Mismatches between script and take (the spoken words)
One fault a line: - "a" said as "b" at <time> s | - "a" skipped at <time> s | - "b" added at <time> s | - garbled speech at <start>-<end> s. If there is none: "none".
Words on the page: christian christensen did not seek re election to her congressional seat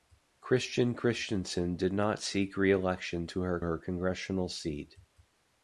- "her" added at 3.6 s